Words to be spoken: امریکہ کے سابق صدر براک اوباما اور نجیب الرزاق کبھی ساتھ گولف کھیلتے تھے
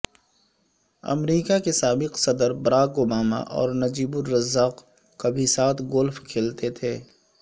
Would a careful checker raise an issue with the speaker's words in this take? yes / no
no